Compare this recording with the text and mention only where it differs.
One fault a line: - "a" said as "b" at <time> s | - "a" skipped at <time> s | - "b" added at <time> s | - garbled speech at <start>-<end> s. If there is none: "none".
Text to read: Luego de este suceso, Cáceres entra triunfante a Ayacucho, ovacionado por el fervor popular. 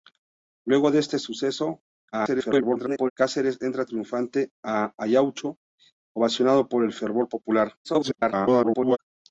- garbled speech at 2.1-3.1 s
- garbled speech at 7.8-9.0 s